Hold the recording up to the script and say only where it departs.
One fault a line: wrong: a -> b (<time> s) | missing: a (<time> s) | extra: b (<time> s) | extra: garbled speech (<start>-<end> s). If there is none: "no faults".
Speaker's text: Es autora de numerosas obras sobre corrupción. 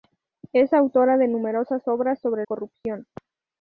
no faults